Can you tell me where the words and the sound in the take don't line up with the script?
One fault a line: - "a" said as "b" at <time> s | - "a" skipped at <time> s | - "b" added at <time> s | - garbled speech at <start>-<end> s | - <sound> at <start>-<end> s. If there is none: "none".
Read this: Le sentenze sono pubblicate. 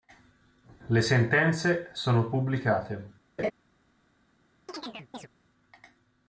- laugh at 3.4-3.5 s
- chirp at 4.7-5.3 s